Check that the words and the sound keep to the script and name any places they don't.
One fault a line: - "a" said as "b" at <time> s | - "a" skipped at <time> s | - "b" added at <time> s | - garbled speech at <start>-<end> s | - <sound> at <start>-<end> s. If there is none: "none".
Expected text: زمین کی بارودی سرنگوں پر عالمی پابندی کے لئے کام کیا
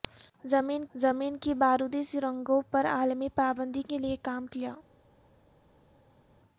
- "زمین" added at 0.9 s